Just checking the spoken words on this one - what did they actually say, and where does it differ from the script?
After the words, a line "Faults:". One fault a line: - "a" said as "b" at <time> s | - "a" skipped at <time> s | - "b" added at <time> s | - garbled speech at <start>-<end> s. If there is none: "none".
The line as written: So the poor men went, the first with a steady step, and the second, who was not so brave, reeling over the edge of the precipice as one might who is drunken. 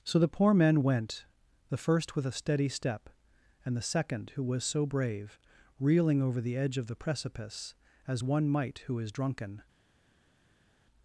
So the poor men went, the first with a steady step, and the second, who was so brave, reeling over the edge of the precipice as one might who is drunken.
Faults:
- "not" skipped at 4.6 s